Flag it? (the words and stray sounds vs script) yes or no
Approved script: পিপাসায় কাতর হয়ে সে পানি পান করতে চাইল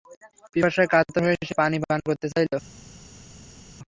no